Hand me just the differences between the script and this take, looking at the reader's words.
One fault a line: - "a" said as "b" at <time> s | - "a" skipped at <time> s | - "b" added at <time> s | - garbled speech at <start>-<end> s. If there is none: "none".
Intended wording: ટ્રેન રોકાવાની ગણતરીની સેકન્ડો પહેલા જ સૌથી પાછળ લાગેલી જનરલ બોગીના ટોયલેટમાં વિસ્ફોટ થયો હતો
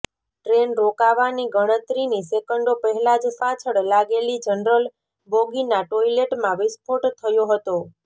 - "સૌથી" skipped at 3.4 s